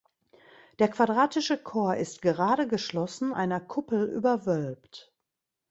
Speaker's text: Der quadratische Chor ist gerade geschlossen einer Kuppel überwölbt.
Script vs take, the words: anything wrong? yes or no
no